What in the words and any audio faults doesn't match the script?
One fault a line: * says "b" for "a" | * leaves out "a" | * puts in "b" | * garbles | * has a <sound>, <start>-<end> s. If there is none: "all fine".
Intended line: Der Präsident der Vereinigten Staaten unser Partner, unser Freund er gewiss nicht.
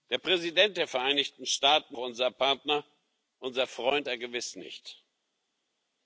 all fine